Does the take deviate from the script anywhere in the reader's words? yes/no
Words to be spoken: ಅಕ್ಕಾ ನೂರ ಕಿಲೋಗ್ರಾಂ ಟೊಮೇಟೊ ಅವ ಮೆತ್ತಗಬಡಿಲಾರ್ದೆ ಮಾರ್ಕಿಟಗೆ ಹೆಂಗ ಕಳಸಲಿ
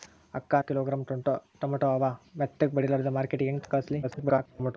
yes